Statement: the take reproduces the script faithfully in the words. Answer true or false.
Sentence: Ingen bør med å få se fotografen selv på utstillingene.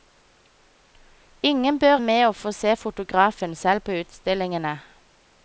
true